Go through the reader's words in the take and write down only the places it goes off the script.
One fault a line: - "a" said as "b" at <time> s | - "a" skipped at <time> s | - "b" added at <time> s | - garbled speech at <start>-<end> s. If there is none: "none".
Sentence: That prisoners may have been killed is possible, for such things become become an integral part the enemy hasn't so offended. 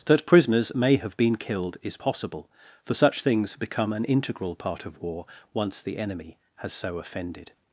- "become" skipped at 3.9 s
- "of war once" added at 4.8 s
- "hasn't" said as "has" at 6.6 s